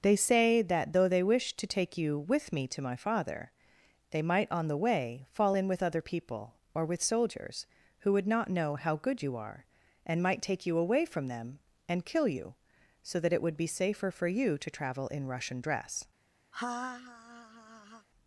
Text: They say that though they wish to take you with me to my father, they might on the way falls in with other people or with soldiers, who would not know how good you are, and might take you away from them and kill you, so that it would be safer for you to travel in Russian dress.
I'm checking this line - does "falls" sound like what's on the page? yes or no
no